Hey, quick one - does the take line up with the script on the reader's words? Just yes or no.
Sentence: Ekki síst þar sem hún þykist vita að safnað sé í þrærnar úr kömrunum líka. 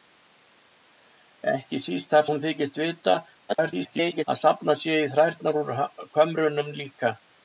no